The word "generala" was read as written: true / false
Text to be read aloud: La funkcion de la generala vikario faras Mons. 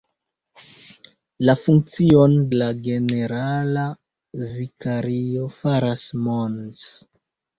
true